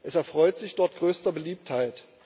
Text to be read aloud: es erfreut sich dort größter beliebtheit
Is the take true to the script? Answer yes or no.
yes